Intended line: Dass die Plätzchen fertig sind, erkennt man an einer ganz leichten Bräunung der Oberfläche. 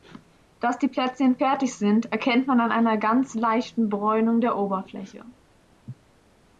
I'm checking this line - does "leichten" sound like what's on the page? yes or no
yes